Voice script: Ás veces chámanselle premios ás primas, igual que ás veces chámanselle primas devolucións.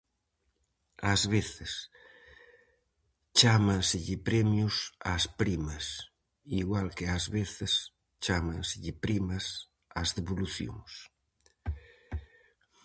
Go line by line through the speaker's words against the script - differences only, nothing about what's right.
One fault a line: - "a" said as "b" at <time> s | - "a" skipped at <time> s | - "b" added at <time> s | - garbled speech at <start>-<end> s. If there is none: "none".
- "ás" added at 10.0 s